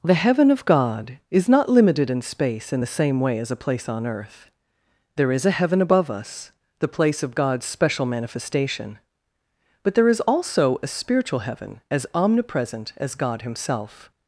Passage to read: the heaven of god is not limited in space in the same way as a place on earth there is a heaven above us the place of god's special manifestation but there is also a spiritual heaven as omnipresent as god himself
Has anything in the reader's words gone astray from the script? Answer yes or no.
no